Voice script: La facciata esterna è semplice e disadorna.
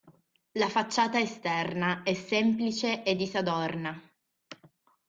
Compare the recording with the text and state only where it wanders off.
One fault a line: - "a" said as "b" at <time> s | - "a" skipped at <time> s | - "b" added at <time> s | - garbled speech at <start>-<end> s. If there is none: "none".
none